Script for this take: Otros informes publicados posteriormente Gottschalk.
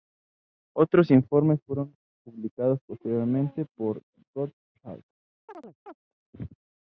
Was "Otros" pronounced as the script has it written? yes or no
yes